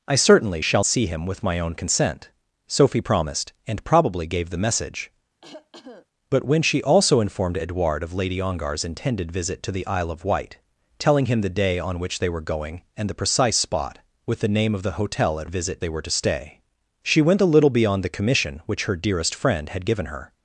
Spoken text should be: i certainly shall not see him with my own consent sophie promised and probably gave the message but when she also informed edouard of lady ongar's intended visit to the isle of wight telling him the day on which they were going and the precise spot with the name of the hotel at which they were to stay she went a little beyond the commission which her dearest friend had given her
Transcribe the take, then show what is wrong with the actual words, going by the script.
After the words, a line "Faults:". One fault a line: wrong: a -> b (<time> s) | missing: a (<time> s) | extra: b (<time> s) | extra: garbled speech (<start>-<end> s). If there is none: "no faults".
i certainly shall see him with my own consent sophie promised and probably gave the message but when she also informed edouard of lady ongar's intended visit to the isle of wight telling him the day on which they were going and the precise spot with the name of the hotel at visit they were to stay she went a little beyond the commission which her dearest friend had given her
Faults:
missing: not (0.8 s)
wrong: which -> visit (15.5 s)